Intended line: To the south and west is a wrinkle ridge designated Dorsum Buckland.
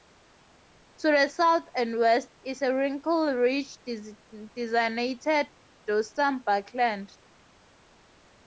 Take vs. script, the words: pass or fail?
pass